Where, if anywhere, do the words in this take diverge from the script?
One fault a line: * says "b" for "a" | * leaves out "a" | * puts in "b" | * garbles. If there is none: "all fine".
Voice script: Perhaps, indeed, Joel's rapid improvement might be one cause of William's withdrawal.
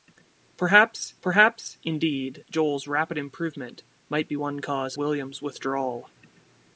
* puts in "perhaps"
* leaves out "of"